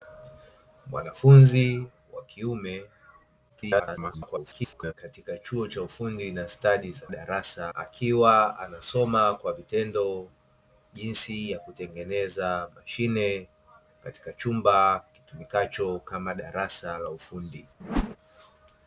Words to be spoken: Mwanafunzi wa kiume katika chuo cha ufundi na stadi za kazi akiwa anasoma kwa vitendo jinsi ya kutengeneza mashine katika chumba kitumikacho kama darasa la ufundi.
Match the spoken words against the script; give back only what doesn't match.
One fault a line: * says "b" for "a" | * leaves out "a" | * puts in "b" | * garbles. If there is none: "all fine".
* garbles
* says "darasa" for "kazi"